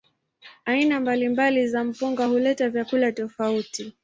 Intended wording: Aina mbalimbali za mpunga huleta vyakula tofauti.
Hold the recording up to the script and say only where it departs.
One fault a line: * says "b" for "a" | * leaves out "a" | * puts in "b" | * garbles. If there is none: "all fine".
all fine